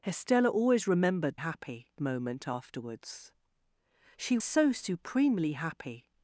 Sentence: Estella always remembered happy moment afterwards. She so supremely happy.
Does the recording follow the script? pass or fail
pass